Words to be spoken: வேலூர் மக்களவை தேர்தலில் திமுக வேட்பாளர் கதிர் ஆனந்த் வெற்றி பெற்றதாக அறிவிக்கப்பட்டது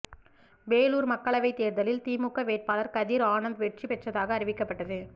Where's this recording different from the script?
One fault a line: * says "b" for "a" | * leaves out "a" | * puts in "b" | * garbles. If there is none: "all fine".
all fine